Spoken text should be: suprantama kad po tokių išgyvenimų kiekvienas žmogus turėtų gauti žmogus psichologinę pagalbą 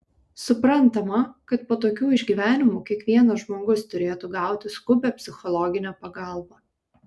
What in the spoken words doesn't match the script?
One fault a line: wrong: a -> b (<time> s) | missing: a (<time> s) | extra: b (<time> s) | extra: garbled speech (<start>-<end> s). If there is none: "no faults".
wrong: žmogus -> skubią (4.8 s)